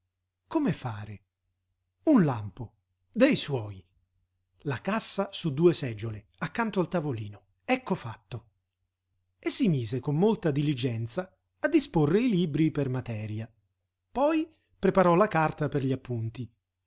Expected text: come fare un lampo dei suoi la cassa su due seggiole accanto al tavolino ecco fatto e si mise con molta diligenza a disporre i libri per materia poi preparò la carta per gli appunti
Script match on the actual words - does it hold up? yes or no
yes